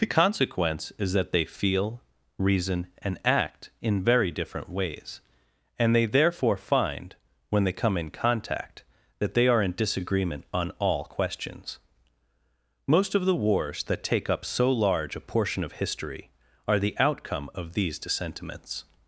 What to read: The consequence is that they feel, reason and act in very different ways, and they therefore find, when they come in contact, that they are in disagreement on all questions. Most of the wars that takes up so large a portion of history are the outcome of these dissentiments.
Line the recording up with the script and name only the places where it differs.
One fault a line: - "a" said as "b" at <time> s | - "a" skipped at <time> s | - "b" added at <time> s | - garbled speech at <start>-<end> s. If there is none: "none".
- "takes" said as "take" at 14.0 s